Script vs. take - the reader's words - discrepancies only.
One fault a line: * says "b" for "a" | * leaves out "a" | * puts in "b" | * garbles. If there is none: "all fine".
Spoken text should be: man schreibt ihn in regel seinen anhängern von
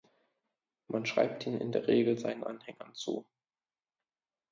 * puts in "der"
* says "zu" for "von"